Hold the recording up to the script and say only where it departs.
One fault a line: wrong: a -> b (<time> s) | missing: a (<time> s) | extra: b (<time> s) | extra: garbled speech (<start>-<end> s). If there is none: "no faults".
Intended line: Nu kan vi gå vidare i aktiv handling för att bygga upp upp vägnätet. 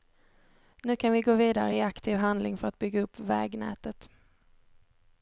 missing: upp (3.2 s)